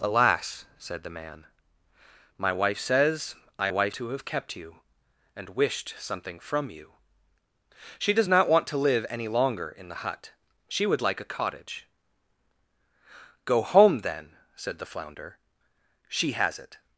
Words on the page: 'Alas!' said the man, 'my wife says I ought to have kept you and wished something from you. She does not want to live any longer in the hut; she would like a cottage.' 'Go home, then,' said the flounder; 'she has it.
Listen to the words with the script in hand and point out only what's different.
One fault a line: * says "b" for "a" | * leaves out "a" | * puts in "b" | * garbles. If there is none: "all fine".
* says "wife" for "ought"